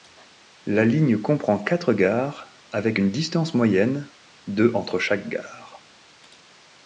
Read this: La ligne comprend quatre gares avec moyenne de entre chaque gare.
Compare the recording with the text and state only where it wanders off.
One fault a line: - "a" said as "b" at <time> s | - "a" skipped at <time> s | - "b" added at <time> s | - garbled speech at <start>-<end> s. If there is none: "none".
- "une distance" added at 2.9 s